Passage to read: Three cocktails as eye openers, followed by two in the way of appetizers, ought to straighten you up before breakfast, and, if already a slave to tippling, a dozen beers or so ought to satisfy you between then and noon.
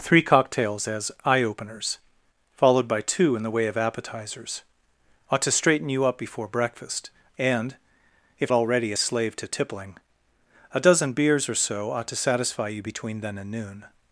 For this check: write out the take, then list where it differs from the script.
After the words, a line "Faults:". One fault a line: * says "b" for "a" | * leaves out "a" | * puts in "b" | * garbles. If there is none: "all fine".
Three cocktails as eye openers, followed by two in the way of appetizers, ought to straighten you up before breakfast, and, if already a slave to tippling, a dozen beers or so ought to satisfy you between then and noon.
Faults:
all fine